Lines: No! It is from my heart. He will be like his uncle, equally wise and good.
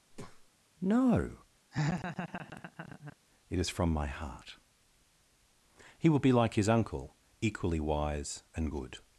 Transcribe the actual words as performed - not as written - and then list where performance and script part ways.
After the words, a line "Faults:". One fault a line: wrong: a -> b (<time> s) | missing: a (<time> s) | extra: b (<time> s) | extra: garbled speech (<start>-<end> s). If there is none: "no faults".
No! It is from my heart. He will be like his uncle, equally wise and good.
Faults:
no faults